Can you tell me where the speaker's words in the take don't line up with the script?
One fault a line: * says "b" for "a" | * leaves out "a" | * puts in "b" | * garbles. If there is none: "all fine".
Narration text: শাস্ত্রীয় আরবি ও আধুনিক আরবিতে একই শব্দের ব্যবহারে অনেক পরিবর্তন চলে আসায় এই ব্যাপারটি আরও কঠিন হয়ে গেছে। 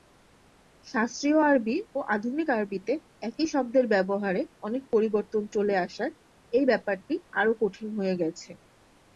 all fine